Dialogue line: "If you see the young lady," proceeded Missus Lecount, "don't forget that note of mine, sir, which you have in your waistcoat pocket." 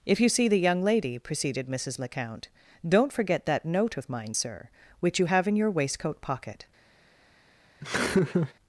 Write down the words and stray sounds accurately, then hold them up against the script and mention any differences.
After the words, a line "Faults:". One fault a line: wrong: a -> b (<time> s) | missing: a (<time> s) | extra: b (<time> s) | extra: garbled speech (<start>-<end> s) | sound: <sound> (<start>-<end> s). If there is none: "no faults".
"If you see the young lady," proceeded Missus Lecount, "don't forget that note of mine, sir, which you have in your waistcoat pocket."
Faults:
sound: laugh (7.8-8.5 s)